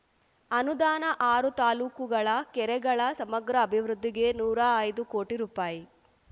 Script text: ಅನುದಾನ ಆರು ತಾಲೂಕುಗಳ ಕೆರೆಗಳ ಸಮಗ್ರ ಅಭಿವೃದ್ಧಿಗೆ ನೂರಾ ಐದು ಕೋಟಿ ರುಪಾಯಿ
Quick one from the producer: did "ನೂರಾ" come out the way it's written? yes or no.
yes